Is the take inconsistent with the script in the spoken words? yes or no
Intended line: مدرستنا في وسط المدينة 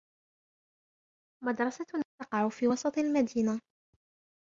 yes